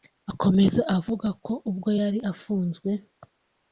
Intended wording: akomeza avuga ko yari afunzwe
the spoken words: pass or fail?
fail